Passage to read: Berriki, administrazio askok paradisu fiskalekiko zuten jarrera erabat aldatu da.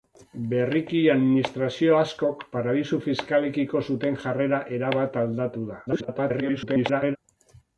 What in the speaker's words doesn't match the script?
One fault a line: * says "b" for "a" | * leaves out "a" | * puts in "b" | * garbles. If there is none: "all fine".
* garbles